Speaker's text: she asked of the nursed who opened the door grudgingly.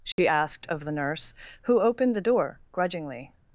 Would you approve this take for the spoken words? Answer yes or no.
no